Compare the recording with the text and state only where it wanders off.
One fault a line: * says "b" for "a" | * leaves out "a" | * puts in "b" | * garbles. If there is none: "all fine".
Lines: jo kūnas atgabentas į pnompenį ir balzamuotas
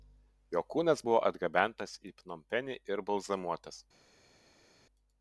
* puts in "buvo"